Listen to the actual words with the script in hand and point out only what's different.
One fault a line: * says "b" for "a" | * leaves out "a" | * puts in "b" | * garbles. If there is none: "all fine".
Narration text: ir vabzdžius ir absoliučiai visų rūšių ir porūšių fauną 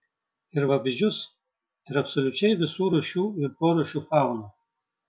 all fine